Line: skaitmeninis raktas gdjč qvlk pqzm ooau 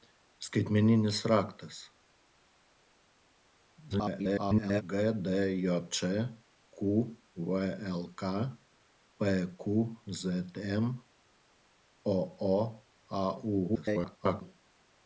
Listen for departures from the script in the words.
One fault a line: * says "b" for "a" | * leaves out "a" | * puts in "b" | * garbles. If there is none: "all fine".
* garbles
* garbles